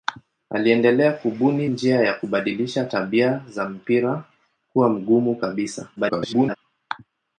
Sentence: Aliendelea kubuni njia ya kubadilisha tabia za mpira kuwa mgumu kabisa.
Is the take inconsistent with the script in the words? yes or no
yes